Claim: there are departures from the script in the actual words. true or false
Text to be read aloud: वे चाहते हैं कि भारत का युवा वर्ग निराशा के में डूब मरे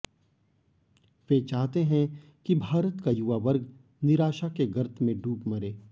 true